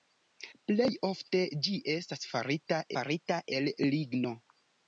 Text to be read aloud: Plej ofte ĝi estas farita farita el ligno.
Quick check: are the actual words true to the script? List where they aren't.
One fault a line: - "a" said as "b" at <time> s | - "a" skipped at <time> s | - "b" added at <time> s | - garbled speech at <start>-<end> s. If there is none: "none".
none